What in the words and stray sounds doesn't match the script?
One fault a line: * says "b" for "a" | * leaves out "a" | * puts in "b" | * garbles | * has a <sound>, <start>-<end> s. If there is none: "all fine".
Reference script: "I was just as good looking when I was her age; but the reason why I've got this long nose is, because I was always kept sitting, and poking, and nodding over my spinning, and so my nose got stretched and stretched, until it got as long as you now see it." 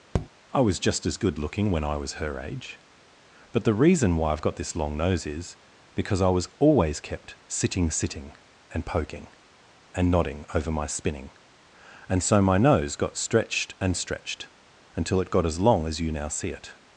* has a tap, 0.1-0.3 s
* puts in "sitting"